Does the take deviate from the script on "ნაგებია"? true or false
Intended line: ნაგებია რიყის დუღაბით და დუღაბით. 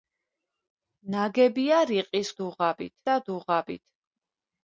false